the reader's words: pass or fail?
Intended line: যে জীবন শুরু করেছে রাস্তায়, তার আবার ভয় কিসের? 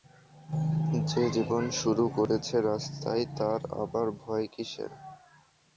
pass